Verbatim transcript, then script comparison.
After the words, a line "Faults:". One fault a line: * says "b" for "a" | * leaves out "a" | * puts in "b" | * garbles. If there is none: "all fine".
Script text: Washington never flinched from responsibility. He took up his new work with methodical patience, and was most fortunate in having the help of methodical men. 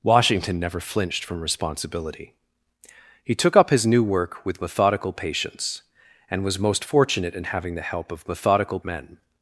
Washington never flinched from responsibility. He took up his new work with methodical patience, and was most fortunate in having the help of methodical men.
Faults:
all fine